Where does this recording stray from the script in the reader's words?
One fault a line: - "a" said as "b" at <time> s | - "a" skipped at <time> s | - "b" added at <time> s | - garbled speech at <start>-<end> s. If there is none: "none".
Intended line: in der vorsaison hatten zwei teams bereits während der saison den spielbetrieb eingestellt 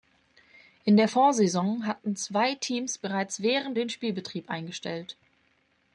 - "der saison" skipped at 3.8 s